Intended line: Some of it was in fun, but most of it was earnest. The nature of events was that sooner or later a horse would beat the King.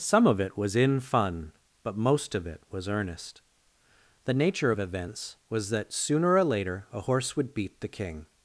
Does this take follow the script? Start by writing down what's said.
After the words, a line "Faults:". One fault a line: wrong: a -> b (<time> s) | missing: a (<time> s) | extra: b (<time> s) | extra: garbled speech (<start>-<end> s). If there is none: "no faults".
Some of it was in fun, but most of it was earnest. The nature of events was that sooner or later a horse would beat the King.
Faults:
no faults